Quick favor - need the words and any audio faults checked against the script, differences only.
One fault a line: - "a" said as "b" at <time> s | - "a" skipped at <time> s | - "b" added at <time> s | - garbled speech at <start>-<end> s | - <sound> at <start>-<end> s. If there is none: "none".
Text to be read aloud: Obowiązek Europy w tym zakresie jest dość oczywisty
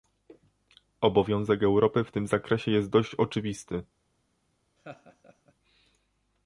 - laugh at 4.8-5.5 s